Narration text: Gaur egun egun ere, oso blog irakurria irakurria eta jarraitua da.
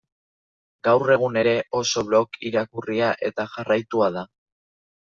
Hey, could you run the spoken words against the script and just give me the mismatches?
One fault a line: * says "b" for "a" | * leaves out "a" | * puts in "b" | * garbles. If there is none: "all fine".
* leaves out "egun"
* leaves out "irakurria"